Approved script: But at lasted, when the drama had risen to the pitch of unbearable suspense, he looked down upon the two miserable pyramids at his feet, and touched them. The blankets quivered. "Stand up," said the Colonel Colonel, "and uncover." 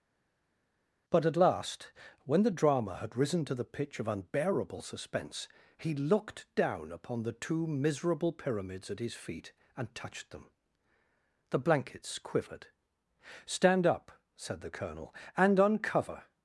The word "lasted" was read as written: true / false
false